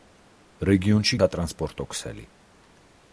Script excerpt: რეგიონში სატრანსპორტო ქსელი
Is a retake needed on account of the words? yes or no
no